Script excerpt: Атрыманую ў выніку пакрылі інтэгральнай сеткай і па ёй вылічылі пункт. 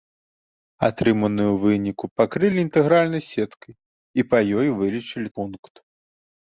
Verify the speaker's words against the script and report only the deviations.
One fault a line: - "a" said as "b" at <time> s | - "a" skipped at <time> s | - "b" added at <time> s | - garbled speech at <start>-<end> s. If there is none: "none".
none